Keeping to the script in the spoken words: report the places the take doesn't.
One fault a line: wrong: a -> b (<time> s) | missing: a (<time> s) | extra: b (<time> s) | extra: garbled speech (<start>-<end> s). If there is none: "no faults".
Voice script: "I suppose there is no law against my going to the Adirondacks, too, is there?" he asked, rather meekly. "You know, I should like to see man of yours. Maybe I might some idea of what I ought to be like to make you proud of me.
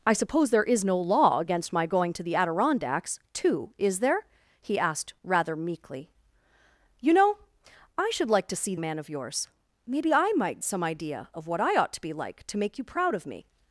no faults